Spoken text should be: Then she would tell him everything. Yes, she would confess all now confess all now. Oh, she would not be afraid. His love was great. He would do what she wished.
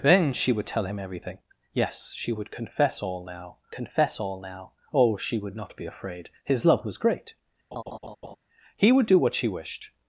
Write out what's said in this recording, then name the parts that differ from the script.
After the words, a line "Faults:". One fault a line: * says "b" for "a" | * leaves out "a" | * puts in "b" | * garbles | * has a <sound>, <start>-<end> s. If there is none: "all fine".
Then she would tell him everything. Yes, she would confess all now confess all now. Oh, she would not be afraid. His love was great. He would do what she wished.
Faults:
* has a laugh, 7.7-8.4 s